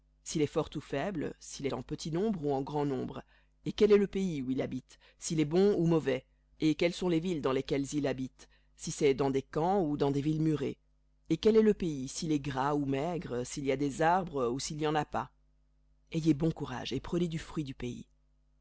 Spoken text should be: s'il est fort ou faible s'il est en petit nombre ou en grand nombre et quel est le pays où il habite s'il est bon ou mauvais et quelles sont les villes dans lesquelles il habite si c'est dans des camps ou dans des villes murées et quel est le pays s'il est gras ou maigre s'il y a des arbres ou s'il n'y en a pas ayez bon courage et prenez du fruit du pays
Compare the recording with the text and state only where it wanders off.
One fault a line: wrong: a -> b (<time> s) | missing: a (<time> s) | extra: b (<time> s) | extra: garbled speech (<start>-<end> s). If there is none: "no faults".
missing: est (1.7 s)